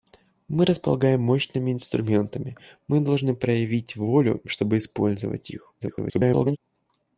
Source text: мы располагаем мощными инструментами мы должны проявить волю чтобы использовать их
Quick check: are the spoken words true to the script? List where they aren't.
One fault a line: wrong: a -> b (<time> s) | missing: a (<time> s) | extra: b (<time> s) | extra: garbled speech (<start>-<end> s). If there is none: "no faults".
extra: garbled speech (5.8-6.6 s)